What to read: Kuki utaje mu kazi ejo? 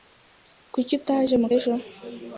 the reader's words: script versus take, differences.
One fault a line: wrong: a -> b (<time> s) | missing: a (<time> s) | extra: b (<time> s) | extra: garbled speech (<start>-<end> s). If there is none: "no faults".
missing: kazi (1.5 s)